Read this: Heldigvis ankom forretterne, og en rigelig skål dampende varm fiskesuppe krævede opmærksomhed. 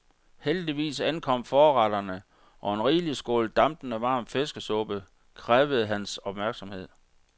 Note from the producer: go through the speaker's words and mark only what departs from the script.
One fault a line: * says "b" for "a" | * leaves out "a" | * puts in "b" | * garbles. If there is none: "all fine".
* puts in "hans"